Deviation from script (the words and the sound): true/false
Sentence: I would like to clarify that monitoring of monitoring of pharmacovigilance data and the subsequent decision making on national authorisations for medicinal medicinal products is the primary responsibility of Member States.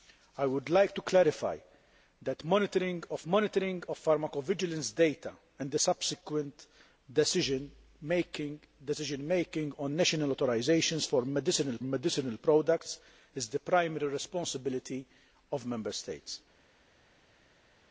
false